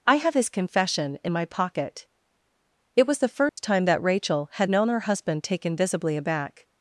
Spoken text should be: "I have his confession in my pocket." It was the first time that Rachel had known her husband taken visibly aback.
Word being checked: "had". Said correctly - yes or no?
yes